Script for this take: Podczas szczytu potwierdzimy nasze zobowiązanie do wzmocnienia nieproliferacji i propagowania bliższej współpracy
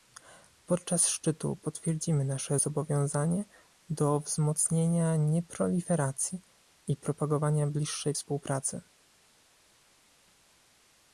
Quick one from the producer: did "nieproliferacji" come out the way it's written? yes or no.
yes